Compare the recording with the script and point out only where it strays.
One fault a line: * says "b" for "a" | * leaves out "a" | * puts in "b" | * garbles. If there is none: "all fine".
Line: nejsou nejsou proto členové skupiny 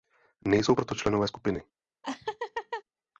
* leaves out "nejsou"